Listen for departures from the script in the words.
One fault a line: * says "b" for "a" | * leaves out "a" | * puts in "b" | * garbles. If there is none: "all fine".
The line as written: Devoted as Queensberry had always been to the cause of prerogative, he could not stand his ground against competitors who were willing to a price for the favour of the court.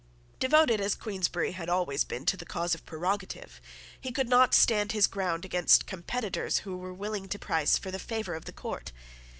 all fine